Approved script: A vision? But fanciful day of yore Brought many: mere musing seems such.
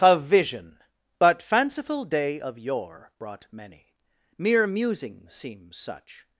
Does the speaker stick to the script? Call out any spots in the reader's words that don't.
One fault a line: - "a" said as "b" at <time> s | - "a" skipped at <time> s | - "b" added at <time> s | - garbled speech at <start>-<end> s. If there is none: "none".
none